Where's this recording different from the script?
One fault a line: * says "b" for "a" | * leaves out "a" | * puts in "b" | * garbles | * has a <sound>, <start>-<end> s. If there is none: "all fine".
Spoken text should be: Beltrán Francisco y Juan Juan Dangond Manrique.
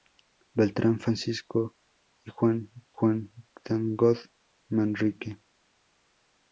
all fine